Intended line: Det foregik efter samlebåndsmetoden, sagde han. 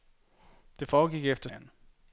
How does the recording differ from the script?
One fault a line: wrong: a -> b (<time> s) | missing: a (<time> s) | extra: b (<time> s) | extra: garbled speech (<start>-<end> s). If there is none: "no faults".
missing: samlebåndsmetoden sagde (1.5 s)